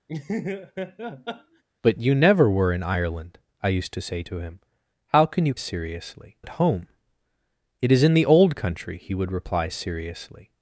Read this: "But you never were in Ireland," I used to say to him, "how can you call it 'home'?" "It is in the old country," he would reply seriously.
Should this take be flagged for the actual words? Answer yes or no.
yes